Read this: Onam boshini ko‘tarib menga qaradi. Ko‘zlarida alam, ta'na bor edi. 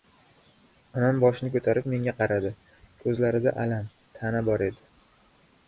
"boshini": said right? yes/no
yes